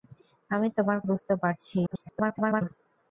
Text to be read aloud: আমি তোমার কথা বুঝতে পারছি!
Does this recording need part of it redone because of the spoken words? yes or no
yes